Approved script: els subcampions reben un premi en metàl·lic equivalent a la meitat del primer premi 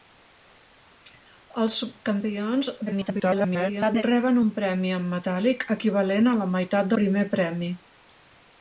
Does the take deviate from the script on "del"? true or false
true